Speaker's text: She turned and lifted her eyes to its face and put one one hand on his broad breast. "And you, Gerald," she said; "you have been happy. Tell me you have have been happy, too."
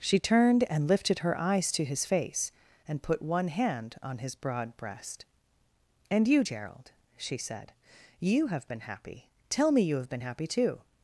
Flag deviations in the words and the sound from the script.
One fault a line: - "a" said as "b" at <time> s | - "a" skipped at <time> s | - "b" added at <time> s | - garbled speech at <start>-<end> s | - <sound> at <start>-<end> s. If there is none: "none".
- "its" said as "his" at 1.9 s
- "one" skipped at 3.5 s
- "have" skipped at 10.1 s